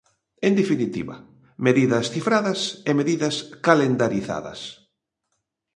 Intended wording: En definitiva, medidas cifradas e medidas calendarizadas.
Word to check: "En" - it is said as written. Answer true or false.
true